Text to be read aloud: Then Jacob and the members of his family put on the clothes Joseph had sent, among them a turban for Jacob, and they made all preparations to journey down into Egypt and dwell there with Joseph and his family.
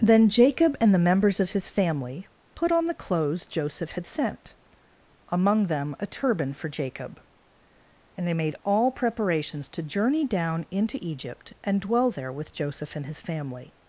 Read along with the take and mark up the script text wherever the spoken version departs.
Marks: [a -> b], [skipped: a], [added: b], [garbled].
Then Jacob and the members of his family put on the clothes Joseph had sent, among them a turban for Jacob, and they made all preparations to journey down into Egypt and dwell there with Joseph and his family.